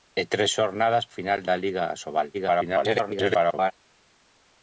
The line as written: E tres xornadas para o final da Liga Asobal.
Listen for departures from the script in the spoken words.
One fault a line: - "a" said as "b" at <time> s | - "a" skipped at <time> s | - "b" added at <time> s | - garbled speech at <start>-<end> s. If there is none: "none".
- "para" skipped at 1.1 s
- garbled speech at 2.3-3.7 s